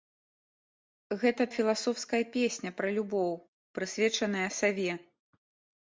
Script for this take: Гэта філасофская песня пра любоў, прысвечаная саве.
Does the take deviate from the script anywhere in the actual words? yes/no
no